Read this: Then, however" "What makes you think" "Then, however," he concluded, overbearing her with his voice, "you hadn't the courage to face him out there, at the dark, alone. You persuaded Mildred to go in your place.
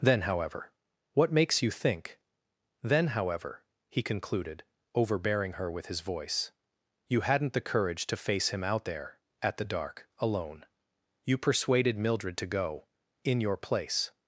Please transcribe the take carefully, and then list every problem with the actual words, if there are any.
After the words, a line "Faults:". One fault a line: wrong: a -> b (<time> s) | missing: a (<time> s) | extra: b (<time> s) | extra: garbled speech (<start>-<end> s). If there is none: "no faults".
Then, however" "What makes you think" "Then, however," he concluded, overbearing her with his voice, "you hadn't the courage to face him out there, at the dark, alone. You persuaded Mildred to go in your place.
Faults:
no faults